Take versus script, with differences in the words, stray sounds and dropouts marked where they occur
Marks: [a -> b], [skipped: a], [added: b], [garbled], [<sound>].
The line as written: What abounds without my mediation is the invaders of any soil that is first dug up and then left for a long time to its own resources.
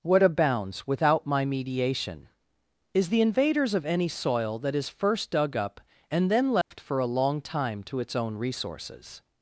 What abounds without my mediation is the invaders of any soil that is first dug up and then left [dropout] for a long time to its own resources.